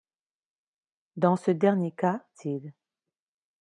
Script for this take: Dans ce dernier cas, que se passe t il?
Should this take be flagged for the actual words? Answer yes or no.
yes